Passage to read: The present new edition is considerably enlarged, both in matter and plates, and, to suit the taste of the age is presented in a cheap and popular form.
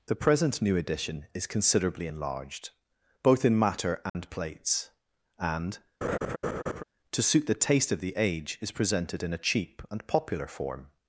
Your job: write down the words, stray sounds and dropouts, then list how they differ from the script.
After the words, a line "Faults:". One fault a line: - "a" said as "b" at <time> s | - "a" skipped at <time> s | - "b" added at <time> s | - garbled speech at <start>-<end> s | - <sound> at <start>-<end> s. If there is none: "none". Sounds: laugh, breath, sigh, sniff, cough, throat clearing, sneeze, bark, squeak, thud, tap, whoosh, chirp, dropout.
The present new edition is considerably enlarged, both in matter and plates, and, to suit the taste of the age is presented in a cheap and popular form.
Faults:
- dropout at 4.1-4.1 s
- laugh at 6.0-6.8 s